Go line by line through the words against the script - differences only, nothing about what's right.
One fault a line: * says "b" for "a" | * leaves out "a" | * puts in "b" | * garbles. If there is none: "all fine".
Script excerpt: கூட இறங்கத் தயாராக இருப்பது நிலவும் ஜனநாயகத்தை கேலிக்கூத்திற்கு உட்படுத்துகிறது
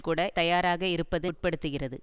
* leaves out "இறங்கத்"
* leaves out "நிலவும் ஜனநாயகத்தை கேலிக்கூத்திற்கு"